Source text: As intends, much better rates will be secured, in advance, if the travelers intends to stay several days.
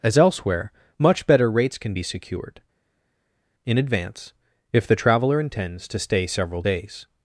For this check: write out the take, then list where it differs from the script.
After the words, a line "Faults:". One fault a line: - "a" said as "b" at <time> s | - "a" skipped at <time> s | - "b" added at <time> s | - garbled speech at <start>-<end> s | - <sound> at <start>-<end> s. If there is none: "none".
As elsewhere, much better rates can be secured, in advance, if the traveler intends to stay several days.
Faults:
- "intends" said as "elsewhere" at 0.2 s
- "will" said as "can" at 1.8 s
- "travelers" said as "traveler" at 5.0 s